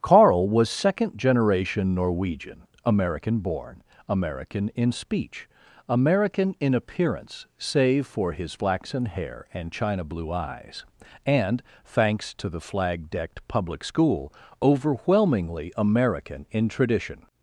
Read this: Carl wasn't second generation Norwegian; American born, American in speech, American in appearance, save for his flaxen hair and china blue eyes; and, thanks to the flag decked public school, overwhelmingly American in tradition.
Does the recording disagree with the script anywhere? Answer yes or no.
yes